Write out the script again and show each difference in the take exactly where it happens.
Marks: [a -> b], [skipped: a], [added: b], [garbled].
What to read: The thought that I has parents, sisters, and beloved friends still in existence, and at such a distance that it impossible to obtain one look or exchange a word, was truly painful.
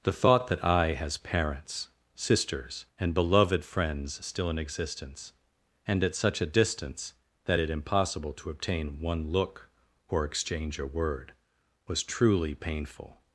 The thought that I has parents, sisters, and beloved friends still in existence, and at such a distance that it impossible to obtain one look or exchange a word, was truly painful.